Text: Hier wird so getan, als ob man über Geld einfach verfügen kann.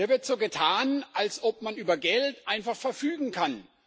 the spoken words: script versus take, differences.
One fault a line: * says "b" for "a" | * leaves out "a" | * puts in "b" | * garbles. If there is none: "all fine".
all fine